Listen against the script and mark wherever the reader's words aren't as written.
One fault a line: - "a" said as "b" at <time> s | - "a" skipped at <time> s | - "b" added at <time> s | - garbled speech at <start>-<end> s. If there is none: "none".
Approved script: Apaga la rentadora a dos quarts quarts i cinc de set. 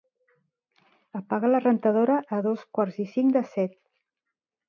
- "quarts" skipped at 3.0 s